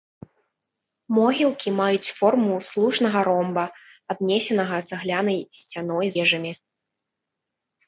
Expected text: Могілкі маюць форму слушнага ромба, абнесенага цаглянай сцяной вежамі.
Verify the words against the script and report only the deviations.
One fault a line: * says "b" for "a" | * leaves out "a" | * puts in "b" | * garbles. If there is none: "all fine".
all fine